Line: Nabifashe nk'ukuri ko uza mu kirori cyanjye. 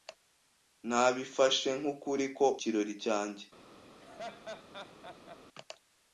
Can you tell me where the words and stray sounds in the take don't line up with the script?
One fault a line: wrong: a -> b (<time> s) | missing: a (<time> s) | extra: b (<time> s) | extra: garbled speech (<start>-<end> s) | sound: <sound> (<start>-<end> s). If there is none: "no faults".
missing: uza mu (2.5 s)
sound: laugh (4.0-5.4 s)